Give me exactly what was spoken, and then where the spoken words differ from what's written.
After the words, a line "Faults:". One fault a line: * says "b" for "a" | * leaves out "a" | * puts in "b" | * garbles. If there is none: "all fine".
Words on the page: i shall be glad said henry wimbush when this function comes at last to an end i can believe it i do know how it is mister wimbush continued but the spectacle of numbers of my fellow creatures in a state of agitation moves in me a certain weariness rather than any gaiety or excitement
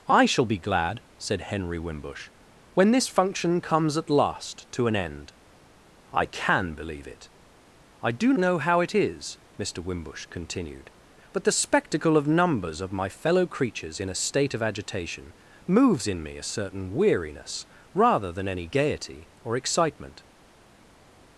i shall be glad said henry wimbush when this function comes at last to an end i can believe it i do know how it is mister wimbush continued but the spectacle of numbers of my fellow creatures in a state of agitation moves in me a certain weariness rather than any gaiety or excitement
Faults:
all fine